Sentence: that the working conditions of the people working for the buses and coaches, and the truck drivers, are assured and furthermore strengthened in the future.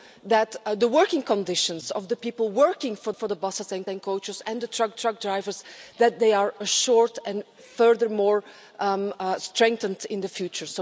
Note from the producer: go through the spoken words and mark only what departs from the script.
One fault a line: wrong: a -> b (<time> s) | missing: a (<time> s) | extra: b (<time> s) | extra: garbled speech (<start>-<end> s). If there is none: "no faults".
extra: for (3.1 s)
extra: and (3.9 s)
extra: truck (4.9 s)